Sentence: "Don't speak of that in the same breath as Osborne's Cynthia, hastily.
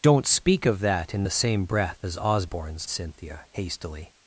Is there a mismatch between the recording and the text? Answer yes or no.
no